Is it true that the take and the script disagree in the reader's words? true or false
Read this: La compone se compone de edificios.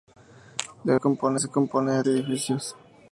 false